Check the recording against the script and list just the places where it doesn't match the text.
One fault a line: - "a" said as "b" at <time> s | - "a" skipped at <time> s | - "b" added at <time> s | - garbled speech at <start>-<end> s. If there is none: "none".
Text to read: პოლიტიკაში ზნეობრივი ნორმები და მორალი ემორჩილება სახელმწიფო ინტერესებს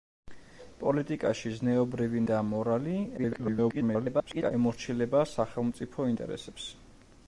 - "ნორმები" skipped at 2.2 s
- garbled speech at 3.2-4.5 s